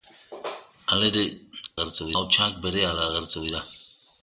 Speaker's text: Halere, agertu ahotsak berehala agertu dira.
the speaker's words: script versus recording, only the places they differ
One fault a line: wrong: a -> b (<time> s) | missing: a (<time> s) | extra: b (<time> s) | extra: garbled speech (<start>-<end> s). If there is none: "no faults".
no faults